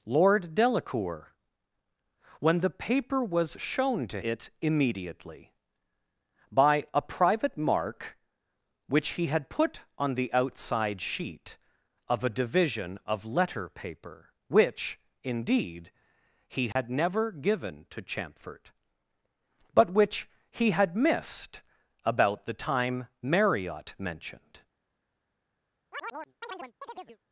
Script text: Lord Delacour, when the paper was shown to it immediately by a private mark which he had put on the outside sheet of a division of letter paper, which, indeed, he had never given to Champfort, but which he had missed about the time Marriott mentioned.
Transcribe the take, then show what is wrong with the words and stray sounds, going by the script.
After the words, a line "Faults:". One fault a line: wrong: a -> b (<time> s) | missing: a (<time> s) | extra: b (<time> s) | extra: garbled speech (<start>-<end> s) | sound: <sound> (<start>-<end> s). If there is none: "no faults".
Lord Delacour, when the paper was shown to it immediately by a private mark which he had put on the outside sheet of a division of letter paper, which, indeed, he had never given to Champfort, but which he had missed about the time Marriott mentioned.
Faults:
sound: dropout (16.7-16.8 s)
sound: chirp (25.9-27.2 s)